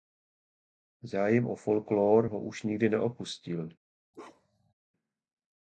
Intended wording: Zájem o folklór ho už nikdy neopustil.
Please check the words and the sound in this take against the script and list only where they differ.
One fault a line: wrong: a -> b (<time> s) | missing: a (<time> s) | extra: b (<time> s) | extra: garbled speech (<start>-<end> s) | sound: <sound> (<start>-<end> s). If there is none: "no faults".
sound: bark (4.1-4.7 s)